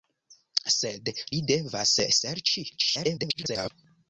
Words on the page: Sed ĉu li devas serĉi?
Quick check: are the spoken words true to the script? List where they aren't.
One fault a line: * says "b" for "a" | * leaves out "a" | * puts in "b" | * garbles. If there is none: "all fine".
* leaves out "ĉu"
* garbles